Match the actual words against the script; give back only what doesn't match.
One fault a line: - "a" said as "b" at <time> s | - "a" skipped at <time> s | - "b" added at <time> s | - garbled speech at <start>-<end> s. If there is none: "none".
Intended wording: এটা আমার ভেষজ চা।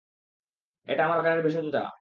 - "বাগানের" added at 1.1 s